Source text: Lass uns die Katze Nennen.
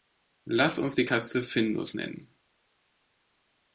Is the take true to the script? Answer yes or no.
no